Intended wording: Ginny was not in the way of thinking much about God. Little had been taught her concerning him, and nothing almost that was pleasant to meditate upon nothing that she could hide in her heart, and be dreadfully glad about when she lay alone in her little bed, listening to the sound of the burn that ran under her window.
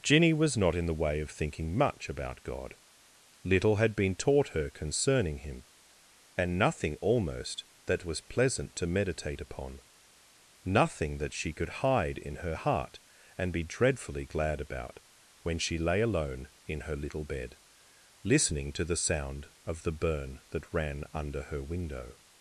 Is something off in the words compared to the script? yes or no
no